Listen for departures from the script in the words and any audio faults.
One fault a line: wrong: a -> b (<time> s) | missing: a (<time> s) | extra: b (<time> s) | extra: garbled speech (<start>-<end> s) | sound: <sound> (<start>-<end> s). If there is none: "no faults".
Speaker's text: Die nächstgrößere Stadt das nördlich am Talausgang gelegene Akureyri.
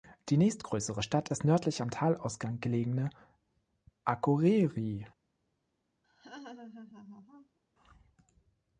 sound: laugh (6.0-7.6 s)